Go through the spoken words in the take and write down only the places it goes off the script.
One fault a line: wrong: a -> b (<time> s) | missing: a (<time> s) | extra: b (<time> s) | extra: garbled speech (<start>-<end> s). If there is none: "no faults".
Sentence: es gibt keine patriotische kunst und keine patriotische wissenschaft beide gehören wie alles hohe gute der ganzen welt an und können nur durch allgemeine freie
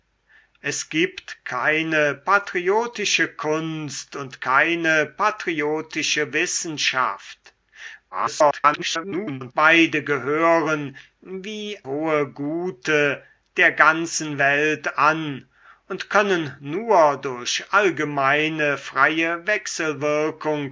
extra: garbled speech (8.1-9.5 s)
missing: alles (11.8 s)